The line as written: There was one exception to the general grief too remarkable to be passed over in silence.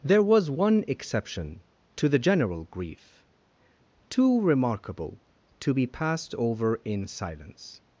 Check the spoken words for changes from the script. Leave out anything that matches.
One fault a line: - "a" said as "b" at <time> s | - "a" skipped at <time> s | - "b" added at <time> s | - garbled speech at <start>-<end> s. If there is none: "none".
none